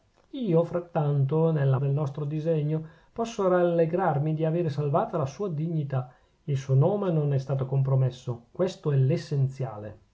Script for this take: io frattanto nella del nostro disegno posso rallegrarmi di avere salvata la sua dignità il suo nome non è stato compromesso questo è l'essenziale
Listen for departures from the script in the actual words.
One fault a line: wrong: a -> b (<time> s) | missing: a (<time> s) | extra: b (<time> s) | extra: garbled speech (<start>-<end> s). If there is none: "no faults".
no faults